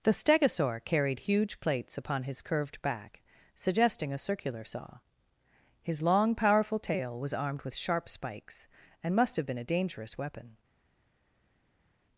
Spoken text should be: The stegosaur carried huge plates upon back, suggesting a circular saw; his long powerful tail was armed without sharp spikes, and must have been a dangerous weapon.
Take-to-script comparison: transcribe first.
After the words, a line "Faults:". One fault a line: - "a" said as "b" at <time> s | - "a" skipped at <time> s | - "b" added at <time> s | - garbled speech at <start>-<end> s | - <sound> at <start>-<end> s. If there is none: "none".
The stegosaur carried huge plates upon his curved back, suggesting a circular saw; his long powerful tail was armed with sharp spikes, and must have been a dangerous weapon.
Faults:
- "his curved" added at 2.2 s
- "without" said as "with" at 7.6 s